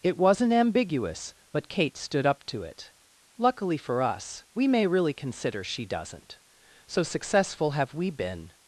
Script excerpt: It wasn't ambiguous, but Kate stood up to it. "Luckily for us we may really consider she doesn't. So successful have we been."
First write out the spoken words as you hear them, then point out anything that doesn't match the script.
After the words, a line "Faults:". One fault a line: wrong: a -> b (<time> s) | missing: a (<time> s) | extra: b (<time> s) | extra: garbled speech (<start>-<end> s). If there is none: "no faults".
It wasn't ambiguous, but Kate stood up to it. "Luckily for us we may really consider she doesn't. So successful have we been."
Faults:
no faults